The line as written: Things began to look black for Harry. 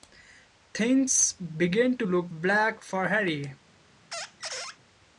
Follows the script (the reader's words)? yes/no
yes